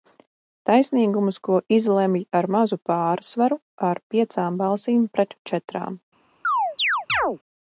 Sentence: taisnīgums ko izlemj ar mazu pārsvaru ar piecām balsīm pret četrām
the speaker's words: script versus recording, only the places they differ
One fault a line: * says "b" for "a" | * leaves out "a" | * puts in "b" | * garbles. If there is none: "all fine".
all fine